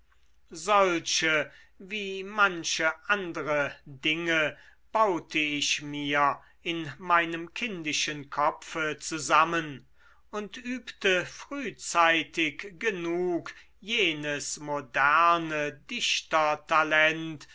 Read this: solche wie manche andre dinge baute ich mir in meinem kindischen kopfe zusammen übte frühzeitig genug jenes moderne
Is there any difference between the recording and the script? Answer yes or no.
yes